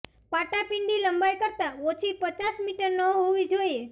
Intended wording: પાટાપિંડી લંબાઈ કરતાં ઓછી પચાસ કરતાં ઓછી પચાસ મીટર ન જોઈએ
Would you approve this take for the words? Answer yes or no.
no